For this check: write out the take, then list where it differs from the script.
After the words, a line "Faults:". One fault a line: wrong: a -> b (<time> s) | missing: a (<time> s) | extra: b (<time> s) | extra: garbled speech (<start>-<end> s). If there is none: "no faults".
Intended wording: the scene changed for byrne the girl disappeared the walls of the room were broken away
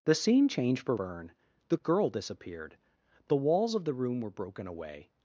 the scene changed for byrne the girl disappeared the walls of the room were broken away
Faults:
no faults